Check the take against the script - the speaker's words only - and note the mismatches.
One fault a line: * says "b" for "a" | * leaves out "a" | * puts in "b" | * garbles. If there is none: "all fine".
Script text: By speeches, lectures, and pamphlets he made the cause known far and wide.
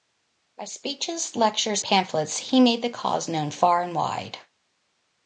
* leaves out "and"